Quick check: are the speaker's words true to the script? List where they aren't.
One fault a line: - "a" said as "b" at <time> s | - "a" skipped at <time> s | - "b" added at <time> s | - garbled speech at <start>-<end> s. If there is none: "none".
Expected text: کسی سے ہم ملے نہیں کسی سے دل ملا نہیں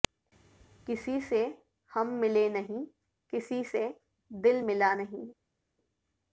none